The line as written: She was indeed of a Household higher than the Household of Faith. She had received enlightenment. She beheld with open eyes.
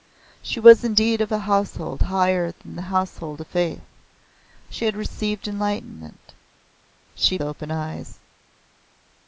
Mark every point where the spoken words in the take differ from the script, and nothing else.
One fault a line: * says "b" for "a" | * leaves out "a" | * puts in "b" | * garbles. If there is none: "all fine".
* leaves out "beheld with"